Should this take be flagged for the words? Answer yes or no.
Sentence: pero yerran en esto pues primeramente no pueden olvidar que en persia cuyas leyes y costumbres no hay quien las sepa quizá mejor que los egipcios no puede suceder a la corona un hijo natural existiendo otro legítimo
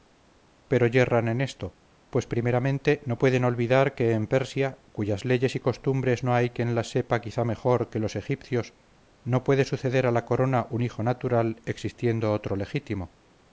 no